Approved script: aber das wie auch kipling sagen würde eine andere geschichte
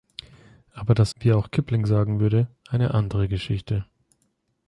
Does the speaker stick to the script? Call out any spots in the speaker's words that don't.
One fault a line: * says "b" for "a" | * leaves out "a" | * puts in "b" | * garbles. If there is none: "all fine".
all fine